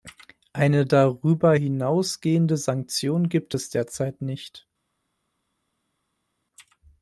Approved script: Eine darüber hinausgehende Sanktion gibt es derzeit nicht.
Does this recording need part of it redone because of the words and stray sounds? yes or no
no